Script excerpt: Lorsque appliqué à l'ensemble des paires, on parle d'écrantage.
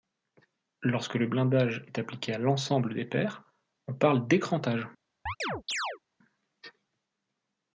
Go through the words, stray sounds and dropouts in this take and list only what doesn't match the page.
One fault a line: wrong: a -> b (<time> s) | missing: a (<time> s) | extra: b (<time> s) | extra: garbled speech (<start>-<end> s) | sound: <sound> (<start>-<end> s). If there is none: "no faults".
extra: le blindage est (1.1 s)
sound: chirp (5.3-6.0 s)